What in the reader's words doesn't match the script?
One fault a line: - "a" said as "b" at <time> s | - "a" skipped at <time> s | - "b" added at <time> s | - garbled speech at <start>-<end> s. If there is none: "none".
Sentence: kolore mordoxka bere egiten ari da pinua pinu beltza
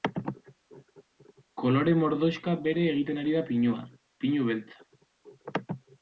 none